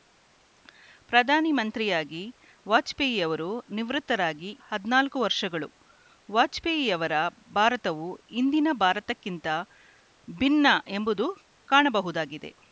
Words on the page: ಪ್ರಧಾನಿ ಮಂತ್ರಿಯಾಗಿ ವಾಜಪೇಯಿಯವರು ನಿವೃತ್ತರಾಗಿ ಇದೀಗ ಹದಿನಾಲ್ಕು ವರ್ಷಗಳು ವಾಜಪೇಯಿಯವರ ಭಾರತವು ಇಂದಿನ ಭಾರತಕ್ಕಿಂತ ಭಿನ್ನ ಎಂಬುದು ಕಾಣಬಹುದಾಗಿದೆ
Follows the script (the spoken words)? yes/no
no